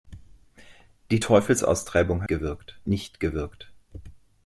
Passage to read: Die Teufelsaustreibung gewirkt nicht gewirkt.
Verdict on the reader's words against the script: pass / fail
pass